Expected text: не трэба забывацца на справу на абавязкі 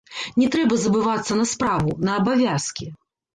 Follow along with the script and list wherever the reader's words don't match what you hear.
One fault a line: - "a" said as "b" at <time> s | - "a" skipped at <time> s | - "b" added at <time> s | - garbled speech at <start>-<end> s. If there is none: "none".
none